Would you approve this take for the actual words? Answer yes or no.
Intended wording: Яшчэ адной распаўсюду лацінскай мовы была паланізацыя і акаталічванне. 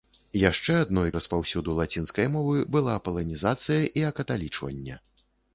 yes